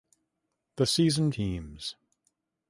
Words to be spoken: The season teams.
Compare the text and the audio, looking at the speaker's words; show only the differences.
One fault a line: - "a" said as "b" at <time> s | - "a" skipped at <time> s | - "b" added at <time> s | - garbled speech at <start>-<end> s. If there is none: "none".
none